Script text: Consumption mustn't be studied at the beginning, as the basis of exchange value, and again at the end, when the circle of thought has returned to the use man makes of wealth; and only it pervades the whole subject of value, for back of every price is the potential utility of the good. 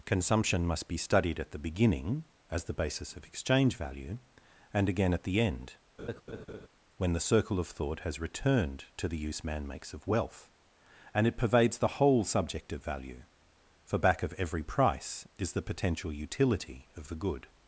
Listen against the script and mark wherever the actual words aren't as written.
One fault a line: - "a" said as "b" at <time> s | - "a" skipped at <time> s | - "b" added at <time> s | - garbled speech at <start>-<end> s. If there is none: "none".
- "mustn't" said as "must" at 0.7 s
- "only" skipped at 11.3 s